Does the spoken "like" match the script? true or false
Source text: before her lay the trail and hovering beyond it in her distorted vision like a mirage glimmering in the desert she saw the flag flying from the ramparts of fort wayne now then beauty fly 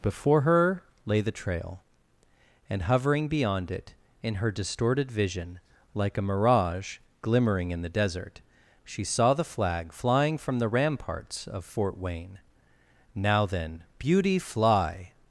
true